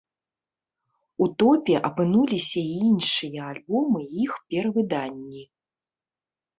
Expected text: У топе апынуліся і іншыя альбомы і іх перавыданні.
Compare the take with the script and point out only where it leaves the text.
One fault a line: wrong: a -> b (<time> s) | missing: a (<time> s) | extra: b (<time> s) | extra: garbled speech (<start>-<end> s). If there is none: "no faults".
no faults